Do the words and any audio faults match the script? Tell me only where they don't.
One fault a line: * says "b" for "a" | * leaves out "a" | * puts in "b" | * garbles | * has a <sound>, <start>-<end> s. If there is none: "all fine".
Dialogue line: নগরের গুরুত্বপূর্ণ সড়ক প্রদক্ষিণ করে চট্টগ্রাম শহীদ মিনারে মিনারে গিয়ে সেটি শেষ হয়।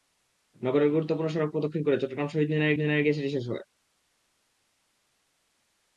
all fine